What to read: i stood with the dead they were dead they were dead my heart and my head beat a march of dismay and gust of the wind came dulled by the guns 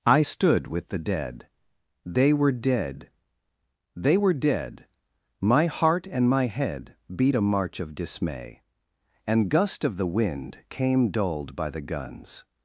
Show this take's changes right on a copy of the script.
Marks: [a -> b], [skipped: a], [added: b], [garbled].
i stood with the dead they were dead they were dead my heart and my head beat a march of dismay and gust of the wind came dulled by the guns